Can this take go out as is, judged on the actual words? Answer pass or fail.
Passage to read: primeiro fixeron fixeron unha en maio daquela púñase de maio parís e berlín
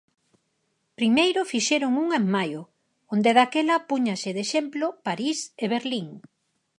fail